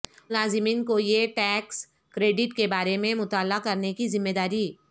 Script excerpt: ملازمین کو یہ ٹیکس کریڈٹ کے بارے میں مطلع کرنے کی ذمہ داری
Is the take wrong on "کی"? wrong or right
right